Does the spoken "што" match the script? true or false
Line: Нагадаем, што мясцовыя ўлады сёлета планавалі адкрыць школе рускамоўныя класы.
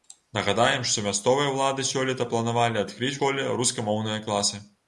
true